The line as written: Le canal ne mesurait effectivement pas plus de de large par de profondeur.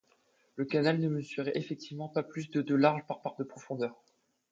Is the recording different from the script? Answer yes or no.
yes